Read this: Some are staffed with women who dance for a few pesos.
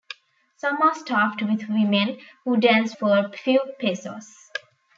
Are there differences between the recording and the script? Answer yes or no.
no